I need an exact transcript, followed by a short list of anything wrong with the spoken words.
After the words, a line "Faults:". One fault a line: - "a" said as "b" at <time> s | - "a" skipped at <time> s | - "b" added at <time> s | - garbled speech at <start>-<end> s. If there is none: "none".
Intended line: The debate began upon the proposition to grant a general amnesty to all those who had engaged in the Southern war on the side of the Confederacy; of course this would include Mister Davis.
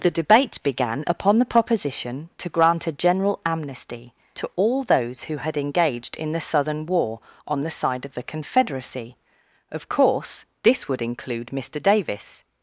The debate began upon the proposition to grant a general amnesty to all those who had engaged in the Southern war on the side of the Confederacy; of course this would include Mister Davis.
Faults:
none